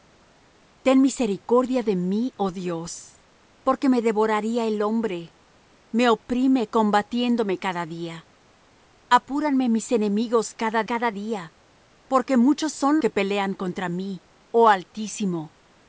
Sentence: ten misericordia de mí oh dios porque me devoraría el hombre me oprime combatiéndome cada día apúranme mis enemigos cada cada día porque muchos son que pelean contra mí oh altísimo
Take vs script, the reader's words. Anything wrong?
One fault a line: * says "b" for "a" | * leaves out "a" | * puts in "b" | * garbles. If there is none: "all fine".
all fine